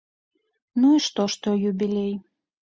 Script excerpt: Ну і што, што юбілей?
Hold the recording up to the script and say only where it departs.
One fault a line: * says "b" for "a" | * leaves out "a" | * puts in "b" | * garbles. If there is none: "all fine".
all fine